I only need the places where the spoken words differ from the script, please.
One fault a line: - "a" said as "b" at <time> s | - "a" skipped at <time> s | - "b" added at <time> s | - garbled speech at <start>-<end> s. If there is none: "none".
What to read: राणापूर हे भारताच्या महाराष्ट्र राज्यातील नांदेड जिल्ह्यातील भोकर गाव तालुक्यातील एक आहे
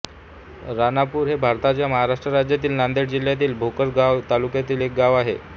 - "गाव" added at 4.9 s